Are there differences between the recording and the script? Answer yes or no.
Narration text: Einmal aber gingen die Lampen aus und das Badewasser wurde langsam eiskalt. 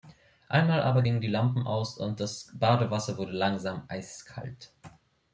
no